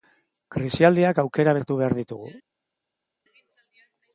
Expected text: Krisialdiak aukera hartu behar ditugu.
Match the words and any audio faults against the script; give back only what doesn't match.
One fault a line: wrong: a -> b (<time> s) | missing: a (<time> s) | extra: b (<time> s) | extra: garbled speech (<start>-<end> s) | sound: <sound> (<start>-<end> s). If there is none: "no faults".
no faults